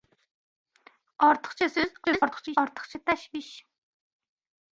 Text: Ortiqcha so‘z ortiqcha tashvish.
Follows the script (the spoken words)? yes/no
no